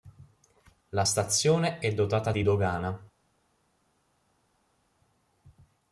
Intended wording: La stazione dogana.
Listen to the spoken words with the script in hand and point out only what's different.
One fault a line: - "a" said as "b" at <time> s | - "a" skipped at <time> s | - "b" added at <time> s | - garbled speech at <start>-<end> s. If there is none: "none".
- "è dotata di" added at 1.8 s